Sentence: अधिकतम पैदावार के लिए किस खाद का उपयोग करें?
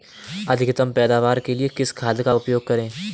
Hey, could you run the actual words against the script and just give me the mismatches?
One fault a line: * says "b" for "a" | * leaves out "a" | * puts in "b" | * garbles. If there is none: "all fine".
all fine